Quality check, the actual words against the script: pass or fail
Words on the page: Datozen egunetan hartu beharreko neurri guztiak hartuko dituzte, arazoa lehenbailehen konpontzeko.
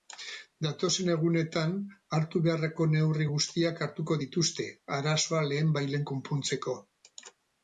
pass